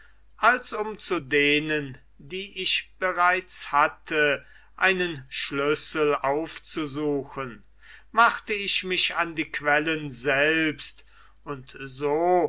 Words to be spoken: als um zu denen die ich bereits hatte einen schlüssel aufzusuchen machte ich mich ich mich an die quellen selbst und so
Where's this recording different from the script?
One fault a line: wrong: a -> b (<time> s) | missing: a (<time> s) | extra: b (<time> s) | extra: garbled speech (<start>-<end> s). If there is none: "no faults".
missing: ich mich (9.1 s)